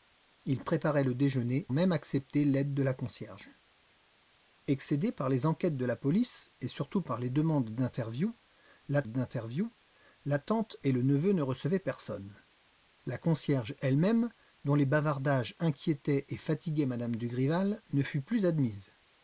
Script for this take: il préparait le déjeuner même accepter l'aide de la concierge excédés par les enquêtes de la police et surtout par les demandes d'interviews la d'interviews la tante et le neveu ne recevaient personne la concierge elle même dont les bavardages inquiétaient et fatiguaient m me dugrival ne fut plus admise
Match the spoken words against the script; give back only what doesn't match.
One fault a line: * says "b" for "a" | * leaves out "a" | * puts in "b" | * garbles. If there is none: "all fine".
all fine